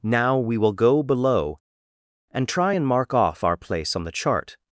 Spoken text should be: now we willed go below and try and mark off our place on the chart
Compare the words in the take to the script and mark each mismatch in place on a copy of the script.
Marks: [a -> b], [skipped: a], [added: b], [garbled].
now we [willed -> will] go below and try and mark off our place on the chart